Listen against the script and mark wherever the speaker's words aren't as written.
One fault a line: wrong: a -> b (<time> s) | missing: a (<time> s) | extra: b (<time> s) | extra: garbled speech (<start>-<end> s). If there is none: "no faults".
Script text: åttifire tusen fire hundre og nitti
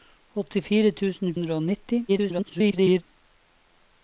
missing: fire (1.4 s)
extra: garbled speech (2.1-3.0 s)